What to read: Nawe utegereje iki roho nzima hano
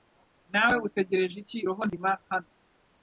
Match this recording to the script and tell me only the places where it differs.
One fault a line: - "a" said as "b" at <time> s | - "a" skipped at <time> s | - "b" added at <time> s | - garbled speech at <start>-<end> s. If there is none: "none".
none